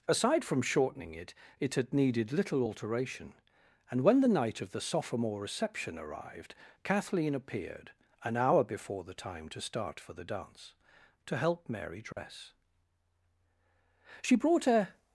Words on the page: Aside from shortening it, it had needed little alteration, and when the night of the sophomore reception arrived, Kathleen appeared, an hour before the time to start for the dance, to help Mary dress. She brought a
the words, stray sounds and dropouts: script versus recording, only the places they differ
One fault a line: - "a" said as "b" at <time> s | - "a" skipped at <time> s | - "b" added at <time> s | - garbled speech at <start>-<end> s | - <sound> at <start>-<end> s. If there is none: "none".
- dropout at 12.1-12.2 s